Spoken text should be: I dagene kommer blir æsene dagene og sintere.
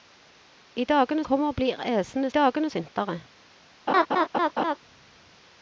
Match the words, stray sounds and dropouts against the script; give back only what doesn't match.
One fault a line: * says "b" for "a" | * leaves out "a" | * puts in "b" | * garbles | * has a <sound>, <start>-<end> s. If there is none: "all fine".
* has a laugh, 3.9-4.8 s